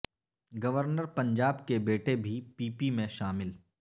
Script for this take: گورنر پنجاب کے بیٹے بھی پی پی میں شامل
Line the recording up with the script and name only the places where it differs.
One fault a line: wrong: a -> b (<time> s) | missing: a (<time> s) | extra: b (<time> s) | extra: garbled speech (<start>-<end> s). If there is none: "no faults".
no faults